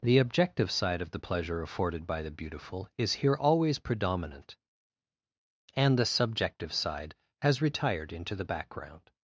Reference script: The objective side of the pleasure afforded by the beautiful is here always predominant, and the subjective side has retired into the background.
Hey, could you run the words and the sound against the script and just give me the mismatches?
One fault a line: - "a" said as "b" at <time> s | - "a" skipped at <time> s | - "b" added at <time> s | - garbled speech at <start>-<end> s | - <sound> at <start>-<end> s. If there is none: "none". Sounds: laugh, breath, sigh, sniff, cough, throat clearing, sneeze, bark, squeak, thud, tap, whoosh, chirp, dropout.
none